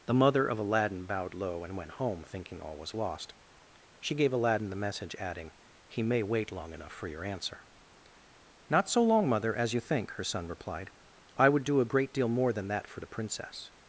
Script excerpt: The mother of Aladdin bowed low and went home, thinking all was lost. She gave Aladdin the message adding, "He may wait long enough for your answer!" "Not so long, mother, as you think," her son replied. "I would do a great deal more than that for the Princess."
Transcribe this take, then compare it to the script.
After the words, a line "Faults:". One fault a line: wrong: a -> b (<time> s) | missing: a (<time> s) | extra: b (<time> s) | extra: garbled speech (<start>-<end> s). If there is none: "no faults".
The mother of Aladdin bowed low and went home, thinking all was lost. She gave Aladdin the message adding, "He may wait long enough for your answer!" "Not so long, mother, as you think," her son replied. "I would do a great deal more than that for the Princess."
Faults:
no faults